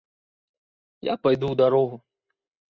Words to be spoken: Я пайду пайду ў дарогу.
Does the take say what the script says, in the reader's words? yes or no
no